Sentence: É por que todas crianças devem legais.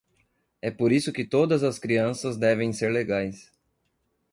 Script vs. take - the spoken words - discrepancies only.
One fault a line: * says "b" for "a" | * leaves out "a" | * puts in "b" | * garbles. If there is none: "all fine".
* puts in "isso"
* puts in "as"
* puts in "ser"